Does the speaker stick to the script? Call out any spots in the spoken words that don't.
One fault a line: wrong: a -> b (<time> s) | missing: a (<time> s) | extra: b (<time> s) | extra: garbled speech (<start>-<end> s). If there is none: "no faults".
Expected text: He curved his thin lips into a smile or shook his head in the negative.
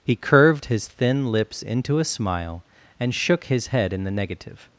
wrong: or -> and (3.0 s)